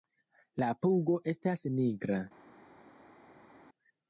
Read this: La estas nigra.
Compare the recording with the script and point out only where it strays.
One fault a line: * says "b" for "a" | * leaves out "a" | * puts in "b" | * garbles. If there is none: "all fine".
* puts in "pugo"